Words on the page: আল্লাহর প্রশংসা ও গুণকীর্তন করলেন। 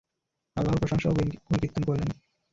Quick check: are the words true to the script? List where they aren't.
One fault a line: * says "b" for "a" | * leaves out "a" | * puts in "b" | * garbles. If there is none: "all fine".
all fine